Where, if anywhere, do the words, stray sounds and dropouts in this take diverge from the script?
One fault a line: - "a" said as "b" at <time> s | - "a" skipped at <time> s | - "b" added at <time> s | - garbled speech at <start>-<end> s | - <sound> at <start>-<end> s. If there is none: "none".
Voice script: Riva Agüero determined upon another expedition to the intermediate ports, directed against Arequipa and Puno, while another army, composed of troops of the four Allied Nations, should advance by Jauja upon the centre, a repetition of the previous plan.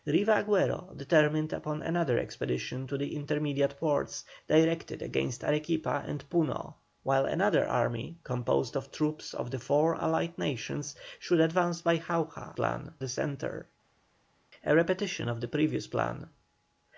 - "upon" said as "plan" at 12.5 s